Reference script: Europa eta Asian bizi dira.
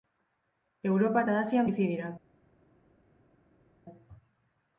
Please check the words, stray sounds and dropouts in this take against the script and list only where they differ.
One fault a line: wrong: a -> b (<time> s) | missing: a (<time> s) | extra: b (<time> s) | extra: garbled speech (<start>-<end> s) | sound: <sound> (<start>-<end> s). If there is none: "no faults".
no faults